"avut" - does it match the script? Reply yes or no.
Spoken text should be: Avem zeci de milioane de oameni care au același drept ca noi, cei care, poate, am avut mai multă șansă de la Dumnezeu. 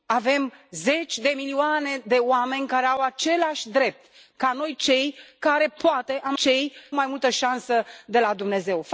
no